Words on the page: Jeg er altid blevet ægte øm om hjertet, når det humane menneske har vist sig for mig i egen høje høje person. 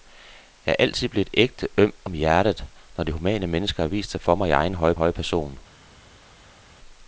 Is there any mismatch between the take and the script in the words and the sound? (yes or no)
no